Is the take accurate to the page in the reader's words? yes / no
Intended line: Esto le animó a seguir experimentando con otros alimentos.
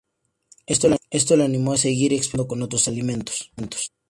yes